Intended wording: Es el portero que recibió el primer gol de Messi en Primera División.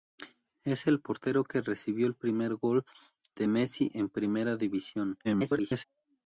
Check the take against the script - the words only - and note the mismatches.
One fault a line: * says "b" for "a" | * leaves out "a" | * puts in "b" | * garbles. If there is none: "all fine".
* garbles